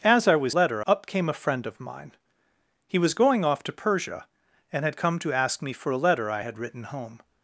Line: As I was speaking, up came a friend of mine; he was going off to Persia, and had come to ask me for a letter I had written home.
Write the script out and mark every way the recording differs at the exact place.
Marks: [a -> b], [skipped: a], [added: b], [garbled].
As I was [speaking, -> letter] up came a friend of mine; he was going off to Persia, and had come to ask me for a letter I had written home.